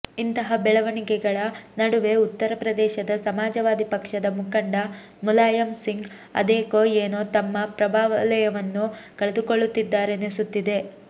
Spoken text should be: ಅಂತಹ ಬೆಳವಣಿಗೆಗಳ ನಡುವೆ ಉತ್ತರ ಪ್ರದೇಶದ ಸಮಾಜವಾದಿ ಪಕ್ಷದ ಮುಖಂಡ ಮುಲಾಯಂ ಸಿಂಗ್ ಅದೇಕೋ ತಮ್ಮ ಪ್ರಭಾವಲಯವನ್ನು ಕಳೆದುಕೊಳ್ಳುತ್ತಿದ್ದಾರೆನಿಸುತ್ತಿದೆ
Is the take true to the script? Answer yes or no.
no